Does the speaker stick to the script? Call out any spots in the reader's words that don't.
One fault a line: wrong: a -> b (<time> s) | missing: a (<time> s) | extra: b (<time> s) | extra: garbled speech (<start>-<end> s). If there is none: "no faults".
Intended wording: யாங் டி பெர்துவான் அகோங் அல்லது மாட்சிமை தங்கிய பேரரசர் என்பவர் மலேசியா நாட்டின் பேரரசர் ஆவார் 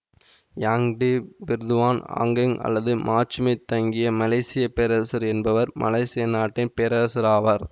extra: மலேசிய (4.2 s)